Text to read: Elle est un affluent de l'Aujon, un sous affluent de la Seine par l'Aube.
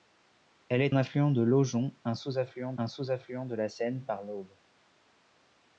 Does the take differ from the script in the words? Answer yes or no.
yes